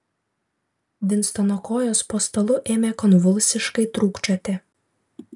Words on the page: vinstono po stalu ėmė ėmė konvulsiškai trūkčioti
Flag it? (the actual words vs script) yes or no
yes